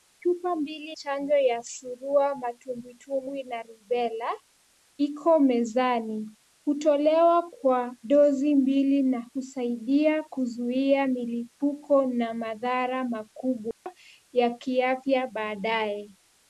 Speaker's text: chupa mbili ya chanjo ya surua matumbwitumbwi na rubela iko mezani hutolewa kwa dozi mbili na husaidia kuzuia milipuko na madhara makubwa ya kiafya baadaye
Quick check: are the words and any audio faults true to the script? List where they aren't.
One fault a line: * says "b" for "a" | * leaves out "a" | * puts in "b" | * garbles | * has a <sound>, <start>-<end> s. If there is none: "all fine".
* leaves out "ya"
* has a dropout, 13.7-13.9 s